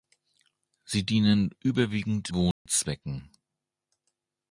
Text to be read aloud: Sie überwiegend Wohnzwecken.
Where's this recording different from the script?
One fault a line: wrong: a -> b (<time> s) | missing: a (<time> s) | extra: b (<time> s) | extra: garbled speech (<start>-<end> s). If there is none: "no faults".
extra: dienen (1.1 s)